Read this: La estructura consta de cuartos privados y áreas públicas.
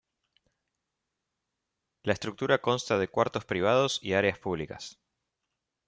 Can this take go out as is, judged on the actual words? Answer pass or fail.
pass